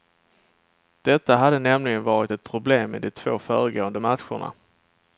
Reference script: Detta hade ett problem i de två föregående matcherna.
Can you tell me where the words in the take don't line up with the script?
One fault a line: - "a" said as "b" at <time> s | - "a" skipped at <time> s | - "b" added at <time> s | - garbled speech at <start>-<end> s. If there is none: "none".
- "nämligen varit" added at 1.6 s